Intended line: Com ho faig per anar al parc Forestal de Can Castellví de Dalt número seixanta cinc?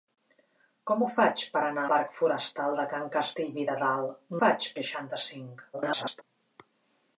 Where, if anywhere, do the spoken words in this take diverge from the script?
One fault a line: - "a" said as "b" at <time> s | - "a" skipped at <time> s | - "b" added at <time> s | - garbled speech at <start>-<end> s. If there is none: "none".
- "al" skipped at 1.8 s
- "número" said as "faig" at 4.4 s
- garbled speech at 5.7-6.2 s